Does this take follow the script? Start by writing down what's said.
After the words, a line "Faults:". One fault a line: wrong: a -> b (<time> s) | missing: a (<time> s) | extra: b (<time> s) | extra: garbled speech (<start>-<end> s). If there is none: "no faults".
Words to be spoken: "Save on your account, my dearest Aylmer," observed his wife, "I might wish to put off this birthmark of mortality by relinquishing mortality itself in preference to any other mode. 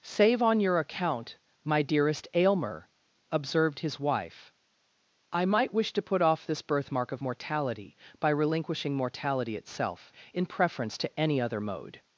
"Save on your account, my dearest Aylmer," observed his wife, "I might wish to put off this birthmark of mortality by relinquishing mortality itself in preference to any other mode.
Faults:
no faults